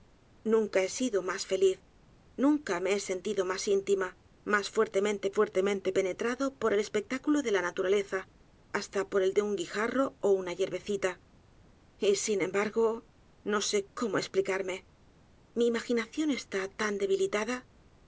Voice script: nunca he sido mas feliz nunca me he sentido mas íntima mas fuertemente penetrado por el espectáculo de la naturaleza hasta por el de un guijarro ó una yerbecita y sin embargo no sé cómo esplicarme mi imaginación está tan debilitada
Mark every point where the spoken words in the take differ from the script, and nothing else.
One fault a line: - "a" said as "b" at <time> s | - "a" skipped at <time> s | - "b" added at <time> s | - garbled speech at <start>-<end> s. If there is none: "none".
- "fuertemente" added at 5.4 s